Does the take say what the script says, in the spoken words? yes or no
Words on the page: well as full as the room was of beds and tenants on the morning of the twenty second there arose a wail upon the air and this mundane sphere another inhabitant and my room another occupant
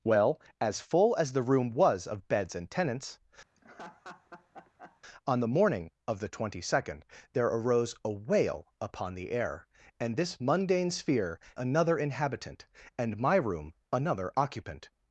yes